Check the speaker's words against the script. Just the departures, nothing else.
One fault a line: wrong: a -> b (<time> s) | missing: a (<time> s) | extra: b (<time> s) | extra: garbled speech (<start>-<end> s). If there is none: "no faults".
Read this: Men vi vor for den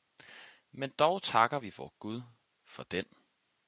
extra: dog takker (0.9 s)
extra: gud (2.0 s)